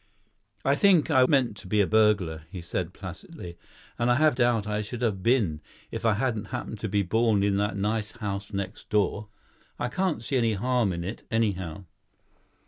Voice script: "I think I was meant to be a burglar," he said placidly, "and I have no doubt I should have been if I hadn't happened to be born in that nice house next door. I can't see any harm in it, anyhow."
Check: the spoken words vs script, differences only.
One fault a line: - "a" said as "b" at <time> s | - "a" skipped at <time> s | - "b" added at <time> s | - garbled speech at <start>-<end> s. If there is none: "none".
- "was" skipped at 1.2 s
- "no" skipped at 4.4 s